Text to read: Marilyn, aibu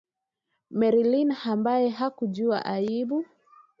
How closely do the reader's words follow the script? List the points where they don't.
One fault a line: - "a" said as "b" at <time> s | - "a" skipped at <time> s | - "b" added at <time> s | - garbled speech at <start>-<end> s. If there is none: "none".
- "ambaye hakujua" added at 1.4 s